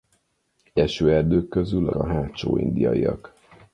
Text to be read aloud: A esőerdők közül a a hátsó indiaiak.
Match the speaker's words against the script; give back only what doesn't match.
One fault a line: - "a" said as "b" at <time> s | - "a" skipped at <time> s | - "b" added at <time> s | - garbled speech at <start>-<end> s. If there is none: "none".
none